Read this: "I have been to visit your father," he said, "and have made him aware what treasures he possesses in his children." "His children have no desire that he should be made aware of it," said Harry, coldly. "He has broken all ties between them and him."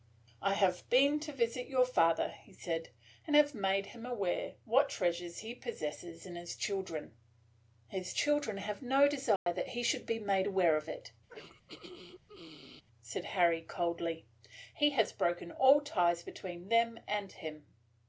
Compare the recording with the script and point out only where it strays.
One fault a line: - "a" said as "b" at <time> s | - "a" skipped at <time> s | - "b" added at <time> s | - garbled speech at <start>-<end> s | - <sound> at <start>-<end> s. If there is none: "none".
- dropout at 9.4-9.5 s
- throat clearing at 11.3-12.8 s